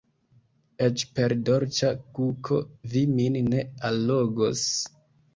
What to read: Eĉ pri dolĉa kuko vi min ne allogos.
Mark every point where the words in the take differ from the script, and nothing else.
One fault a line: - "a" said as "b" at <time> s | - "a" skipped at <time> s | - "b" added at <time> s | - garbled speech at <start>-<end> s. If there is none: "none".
- "pri" said as "per" at 1.2 s